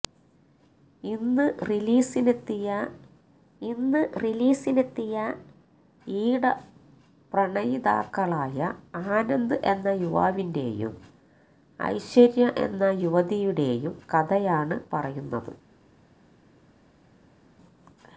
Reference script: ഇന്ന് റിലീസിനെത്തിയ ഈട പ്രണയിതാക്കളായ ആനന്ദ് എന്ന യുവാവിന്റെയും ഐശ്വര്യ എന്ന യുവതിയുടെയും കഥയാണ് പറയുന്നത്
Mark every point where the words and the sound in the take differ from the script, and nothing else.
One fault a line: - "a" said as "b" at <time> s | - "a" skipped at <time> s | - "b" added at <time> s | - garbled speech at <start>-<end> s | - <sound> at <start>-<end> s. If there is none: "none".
- "ഇന്ന് റിലീസിനെത്തിയ" added at 3.6 s